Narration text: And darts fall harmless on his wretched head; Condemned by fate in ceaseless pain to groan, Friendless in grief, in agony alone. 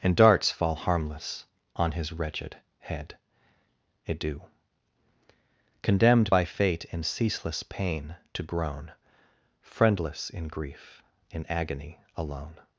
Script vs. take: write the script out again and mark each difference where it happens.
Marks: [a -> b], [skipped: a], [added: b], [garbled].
And darts fall harmless on his wretched head; [added: adieu] Condemned by fate in ceaseless pain to groan, Friendless in grief, in agony alone.